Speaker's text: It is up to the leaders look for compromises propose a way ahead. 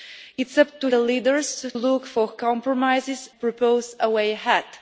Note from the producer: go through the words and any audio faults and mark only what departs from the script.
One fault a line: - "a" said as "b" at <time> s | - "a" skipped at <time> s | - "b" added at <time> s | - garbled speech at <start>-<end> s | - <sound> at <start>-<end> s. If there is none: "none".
none